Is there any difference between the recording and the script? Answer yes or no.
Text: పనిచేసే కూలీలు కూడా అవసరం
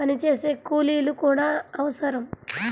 no